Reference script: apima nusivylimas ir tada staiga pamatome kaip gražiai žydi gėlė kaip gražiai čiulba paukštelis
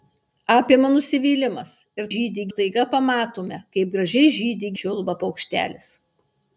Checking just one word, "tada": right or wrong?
wrong